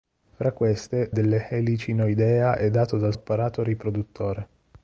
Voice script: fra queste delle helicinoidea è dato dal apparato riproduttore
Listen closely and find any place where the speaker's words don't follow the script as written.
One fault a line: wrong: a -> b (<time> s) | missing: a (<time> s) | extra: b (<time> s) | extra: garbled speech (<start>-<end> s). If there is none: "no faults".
no faults